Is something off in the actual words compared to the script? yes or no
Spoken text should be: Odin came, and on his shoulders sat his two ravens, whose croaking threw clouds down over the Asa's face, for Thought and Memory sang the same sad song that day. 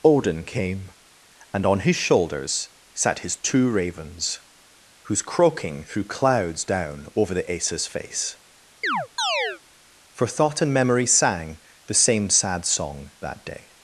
no